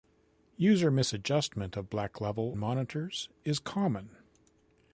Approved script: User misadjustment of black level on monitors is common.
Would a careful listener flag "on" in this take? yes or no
yes